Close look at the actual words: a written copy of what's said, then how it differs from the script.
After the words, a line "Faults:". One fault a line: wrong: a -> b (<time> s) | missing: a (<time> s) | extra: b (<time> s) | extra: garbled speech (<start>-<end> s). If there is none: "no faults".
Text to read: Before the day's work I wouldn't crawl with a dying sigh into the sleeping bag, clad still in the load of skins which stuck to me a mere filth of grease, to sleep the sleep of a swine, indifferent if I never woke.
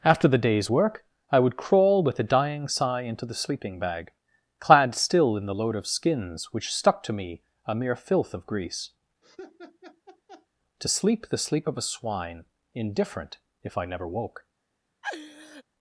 After the day's work I would crawl with a dying sigh into the sleeping bag, clad still in the load of skins which stuck to me a mere filth of grease, to sleep the sleep of a swine, indifferent if I never woke.
Faults:
wrong: Before -> After (0.0 s)
wrong: wouldn't -> would (1.4 s)